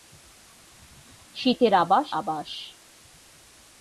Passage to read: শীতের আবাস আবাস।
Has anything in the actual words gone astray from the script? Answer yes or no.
no